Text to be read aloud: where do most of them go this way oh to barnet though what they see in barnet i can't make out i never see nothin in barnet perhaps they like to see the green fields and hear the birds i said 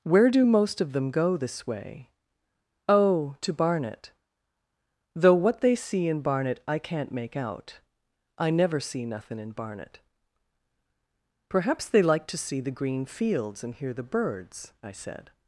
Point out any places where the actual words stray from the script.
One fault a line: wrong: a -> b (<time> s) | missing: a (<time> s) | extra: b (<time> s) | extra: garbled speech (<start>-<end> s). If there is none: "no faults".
no faults